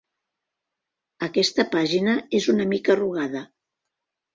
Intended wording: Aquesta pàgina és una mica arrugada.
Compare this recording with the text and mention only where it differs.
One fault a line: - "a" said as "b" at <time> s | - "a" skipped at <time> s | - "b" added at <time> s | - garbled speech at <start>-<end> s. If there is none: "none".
none